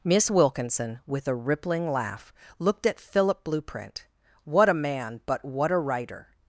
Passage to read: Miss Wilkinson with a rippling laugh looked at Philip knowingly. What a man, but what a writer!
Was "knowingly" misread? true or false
true